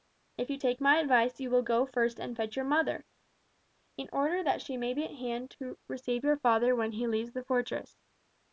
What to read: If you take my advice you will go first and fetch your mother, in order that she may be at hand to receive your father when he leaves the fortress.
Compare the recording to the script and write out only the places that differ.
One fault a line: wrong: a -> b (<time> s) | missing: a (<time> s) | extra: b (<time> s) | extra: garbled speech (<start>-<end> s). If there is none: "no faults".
no faults